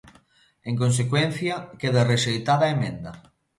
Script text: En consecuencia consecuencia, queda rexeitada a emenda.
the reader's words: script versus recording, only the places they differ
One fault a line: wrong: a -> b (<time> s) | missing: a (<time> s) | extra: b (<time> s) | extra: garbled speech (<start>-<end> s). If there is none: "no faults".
missing: consecuencia (1.6 s)